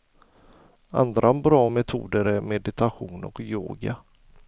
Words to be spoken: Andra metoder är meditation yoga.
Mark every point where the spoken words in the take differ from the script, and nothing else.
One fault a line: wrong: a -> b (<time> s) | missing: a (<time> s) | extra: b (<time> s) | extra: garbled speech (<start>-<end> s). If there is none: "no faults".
extra: bra (1.3 s)
extra: och (3.2 s)